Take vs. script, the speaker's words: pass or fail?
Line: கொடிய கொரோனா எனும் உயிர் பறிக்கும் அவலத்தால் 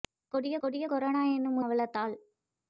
fail